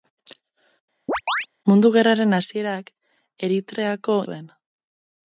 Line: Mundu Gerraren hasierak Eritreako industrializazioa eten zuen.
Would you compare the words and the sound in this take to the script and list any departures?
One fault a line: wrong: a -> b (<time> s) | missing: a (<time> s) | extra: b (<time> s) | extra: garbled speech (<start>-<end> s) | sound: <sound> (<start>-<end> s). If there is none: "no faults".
sound: chirp (1.1-1.5 s)
missing: industrializazioa eten (4.2 s)